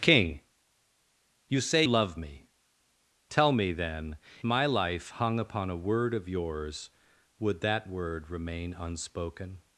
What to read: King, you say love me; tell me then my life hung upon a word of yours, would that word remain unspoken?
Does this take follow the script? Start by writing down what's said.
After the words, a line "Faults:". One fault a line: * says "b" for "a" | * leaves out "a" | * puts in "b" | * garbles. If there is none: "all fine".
King, you say love me; tell me then my life hung upon a word of yours, would that word remain unspoken?
Faults:
all fine